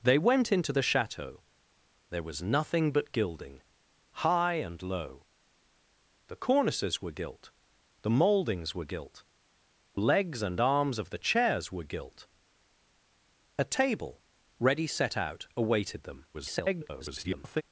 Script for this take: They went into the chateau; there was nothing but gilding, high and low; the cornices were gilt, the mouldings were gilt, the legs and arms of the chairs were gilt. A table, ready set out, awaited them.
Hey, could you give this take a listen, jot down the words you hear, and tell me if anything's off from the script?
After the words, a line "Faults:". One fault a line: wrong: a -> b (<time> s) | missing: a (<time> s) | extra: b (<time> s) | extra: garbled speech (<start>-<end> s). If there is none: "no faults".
They went into the chateau; there was nothing but gilding, high and low; the cornices were gilt, the mouldings were gilt, legs and arms of the chairs were gilt. A table, ready set out, awaited them. [garbled]
Faults:
missing: the (9.2 s)
extra: garbled speech (16.3-17.6 s)